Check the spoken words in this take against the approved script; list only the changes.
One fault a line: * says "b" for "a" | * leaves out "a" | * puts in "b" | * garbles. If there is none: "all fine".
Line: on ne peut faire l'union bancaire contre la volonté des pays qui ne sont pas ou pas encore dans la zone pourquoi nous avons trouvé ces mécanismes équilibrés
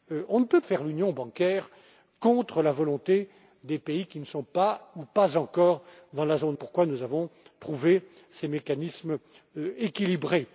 all fine